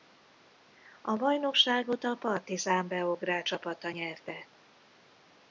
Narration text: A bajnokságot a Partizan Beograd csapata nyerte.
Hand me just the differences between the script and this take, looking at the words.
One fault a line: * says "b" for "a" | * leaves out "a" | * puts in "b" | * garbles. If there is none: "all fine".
all fine